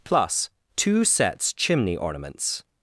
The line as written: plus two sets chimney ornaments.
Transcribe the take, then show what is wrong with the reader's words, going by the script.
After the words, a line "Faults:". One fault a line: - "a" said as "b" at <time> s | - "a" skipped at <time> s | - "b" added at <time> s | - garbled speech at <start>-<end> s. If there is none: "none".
plus two sets chimney ornaments.
Faults:
none